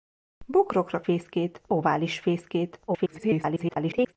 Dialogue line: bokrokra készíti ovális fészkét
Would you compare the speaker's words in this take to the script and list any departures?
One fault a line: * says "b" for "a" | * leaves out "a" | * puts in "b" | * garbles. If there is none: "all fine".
* says "fészkét" for "készíti"
* garbles